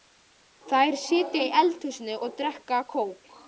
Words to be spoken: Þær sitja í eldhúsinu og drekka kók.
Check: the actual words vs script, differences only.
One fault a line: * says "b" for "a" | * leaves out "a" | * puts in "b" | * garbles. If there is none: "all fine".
all fine